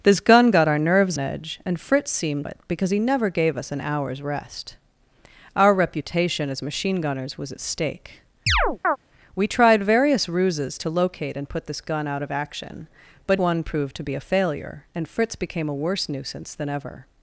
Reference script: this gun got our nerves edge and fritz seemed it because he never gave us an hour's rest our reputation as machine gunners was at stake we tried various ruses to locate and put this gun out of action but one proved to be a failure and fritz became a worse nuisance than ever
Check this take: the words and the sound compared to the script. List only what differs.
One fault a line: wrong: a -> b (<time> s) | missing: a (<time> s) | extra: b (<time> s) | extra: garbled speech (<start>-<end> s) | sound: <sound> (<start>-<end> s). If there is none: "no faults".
sound: chirp (8.5-9.0 s)